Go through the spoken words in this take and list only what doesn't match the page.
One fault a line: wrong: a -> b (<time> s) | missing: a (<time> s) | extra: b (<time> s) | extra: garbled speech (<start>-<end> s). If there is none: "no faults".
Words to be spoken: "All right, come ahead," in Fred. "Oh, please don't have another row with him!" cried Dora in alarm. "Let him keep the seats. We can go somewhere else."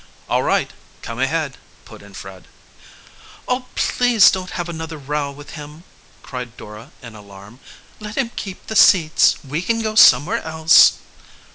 extra: put (1.9 s)